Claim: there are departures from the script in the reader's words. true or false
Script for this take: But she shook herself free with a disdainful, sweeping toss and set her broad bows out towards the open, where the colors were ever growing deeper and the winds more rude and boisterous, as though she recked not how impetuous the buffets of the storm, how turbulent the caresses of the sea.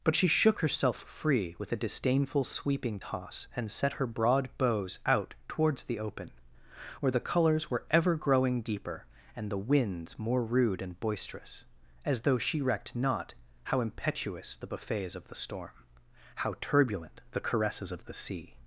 false